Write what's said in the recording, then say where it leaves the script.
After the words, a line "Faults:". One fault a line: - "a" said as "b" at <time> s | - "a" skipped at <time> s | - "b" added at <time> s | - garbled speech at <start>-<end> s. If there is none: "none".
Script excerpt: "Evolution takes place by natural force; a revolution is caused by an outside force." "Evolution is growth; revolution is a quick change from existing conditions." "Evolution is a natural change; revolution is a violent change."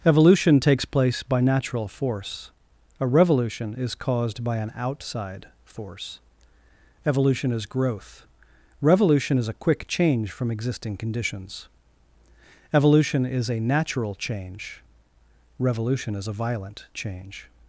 "Evolution takes place by natural force; a revolution is caused by an outside force." "Evolution is growth; revolution is a quick change from existing conditions." "Evolution is a natural change; revolution is a violent change."
Faults:
none